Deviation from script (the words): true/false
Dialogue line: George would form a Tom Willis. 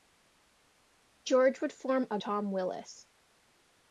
false